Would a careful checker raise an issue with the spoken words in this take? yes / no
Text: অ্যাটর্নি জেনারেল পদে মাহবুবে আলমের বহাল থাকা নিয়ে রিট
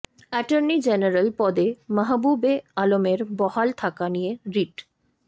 no